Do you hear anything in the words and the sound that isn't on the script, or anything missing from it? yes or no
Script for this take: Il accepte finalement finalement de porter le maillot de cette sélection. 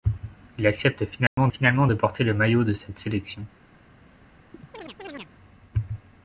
yes